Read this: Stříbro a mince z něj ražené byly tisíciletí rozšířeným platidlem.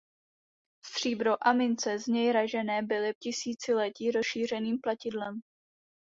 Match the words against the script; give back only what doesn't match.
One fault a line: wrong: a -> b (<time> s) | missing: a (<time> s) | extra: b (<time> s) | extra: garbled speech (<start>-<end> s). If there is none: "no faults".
no faults